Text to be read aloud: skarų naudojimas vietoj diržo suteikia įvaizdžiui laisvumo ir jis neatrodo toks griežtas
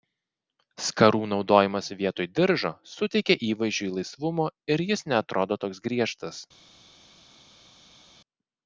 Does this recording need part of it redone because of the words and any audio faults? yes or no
no